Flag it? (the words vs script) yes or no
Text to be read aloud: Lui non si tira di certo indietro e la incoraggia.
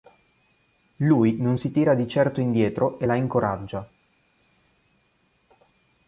no